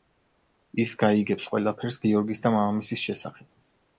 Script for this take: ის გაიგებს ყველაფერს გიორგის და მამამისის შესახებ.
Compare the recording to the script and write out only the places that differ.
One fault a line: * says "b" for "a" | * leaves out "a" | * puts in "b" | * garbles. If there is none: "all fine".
all fine